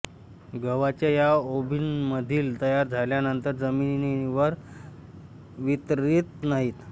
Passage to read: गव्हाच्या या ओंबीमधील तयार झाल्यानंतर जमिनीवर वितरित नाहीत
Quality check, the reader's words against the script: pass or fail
pass